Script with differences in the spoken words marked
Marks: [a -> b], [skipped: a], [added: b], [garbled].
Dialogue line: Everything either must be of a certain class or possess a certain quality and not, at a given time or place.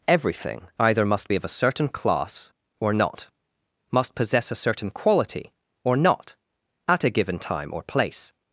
Everything either must be of a certain class or [added: not must] possess a certain quality [and -> or] not, at a given time or place.